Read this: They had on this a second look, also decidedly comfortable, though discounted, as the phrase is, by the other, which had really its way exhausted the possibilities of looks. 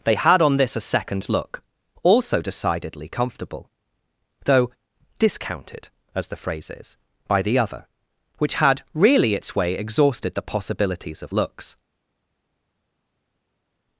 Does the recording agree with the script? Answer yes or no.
yes